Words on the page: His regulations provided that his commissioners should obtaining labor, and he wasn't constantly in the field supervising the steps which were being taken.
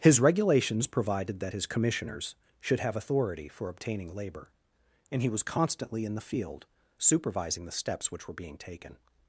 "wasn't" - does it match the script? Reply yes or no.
no